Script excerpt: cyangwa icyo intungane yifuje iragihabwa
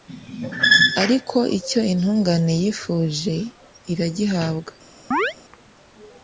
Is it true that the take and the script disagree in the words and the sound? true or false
true